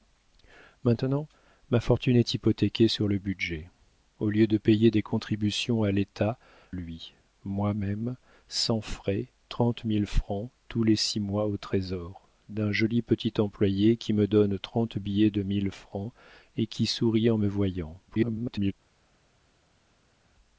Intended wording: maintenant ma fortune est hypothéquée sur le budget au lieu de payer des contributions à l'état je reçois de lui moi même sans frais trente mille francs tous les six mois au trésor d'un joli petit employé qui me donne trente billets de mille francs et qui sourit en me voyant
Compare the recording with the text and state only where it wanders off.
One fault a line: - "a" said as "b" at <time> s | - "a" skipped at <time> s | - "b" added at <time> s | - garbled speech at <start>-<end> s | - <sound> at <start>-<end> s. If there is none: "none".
- "je reçois de" skipped at 6.4 s
- garbled speech at 18.1-18.7 s